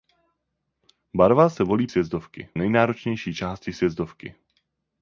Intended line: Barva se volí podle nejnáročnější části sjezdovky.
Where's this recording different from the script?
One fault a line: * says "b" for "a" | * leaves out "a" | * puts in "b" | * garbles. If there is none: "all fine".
* says "sjezdovky" for "podle"